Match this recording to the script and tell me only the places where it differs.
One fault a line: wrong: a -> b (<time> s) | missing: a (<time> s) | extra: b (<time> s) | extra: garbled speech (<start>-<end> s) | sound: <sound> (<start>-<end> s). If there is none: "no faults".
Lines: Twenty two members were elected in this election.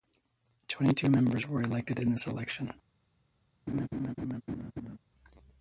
sound: laugh (3.7-5.0 s)